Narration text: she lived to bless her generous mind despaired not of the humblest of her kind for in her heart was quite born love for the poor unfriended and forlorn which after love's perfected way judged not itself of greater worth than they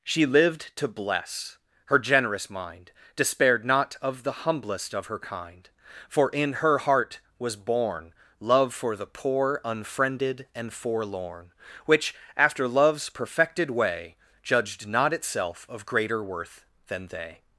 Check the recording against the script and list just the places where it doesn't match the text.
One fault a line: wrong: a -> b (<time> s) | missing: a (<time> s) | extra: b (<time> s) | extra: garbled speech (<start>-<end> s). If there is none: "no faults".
missing: quite (7.5 s)